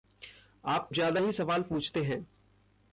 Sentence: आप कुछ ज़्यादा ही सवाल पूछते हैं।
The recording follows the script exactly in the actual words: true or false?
false